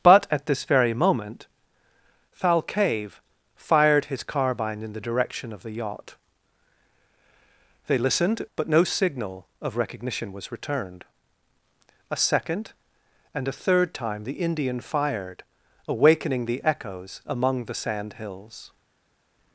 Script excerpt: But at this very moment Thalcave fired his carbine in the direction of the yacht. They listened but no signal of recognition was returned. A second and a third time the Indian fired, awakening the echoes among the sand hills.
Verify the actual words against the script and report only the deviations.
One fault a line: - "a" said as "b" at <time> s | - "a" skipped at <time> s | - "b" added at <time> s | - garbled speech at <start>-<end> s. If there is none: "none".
none